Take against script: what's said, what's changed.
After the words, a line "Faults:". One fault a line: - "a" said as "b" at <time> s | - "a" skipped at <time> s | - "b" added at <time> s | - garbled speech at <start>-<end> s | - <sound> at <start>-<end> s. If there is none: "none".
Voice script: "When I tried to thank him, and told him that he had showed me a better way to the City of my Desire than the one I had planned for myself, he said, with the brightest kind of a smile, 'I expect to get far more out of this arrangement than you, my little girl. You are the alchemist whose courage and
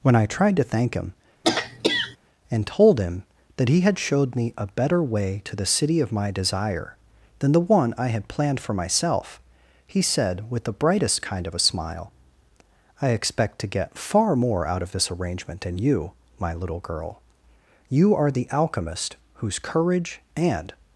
"When I tried to thank him, and told him that he had showed me a better way to the City of my Desire than the one I had planned for myself, he said, with the brightest kind of a smile, 'I expect to get far more out of this arrangement than you, my little girl. You are the alchemist whose courage and
Faults:
- throat clearing at 1.4-2.2 s